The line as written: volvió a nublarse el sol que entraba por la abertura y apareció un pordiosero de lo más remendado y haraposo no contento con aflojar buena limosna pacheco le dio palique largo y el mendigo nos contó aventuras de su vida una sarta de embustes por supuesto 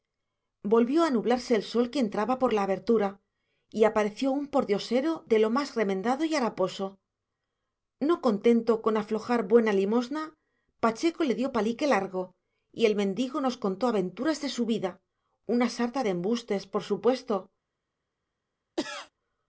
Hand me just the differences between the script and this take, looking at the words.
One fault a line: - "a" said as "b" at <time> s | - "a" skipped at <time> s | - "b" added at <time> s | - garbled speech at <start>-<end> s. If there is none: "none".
none